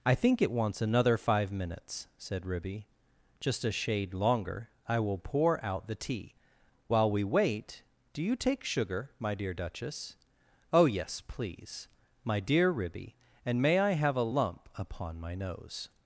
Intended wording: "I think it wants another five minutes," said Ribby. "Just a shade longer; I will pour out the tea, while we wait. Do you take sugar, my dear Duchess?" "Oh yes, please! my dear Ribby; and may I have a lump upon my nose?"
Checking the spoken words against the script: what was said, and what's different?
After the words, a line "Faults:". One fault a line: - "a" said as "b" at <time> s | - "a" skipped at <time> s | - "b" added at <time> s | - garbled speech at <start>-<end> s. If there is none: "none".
"I think it wants another five minutes," said Ribby. "Just a shade longer; I will pour out the tea, while we wait. Do you take sugar, my dear Duchess?" "Oh yes, please! my dear Ribby; and may I have a lump upon my nose?"
Faults:
none